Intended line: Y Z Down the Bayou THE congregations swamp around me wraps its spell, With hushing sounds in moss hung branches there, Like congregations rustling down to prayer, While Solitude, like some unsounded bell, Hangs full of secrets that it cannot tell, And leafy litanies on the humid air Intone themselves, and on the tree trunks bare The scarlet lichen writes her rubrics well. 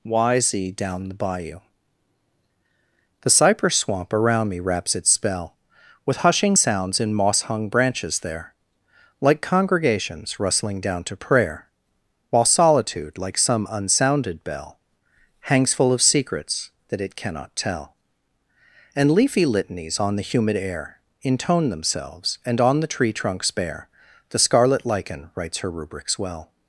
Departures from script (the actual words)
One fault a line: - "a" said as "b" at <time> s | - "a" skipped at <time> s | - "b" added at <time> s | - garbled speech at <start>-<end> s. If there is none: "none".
- "congregations" said as "cypress" at 3.3 s